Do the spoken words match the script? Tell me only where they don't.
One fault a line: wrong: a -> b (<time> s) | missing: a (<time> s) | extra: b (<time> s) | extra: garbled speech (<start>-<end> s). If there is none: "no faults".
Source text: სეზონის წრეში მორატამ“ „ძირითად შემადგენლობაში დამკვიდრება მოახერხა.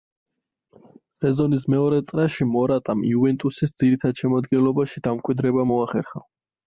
extra: მეორე (1.7 s)
extra: იუვენტუსის (3.1 s)